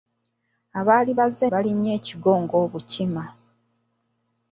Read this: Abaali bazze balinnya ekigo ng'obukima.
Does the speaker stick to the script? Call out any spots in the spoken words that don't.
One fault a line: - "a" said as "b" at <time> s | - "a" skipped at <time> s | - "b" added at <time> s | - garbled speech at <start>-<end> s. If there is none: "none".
none